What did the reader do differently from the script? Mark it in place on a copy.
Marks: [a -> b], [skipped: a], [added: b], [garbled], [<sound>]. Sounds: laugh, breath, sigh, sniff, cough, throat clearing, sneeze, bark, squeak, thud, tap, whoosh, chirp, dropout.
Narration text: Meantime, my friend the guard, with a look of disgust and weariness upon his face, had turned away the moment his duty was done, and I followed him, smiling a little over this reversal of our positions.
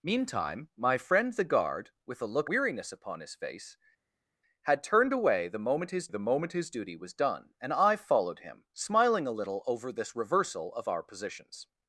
Meantime, my friend the guard, with a look [skipped: of disgust and] weariness upon his face, had turned away the moment his [added: the moment his] duty was done, and I followed him, smiling a little over this reversal of our positions.